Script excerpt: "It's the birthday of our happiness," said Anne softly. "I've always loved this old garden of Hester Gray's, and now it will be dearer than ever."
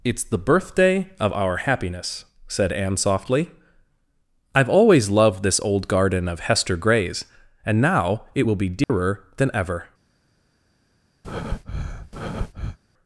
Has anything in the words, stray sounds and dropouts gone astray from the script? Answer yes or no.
yes